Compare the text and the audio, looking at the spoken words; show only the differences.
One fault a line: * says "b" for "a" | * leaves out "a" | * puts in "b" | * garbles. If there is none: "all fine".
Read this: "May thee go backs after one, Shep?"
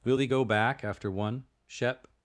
* says "Will" for "May"
* says "back" for "backs"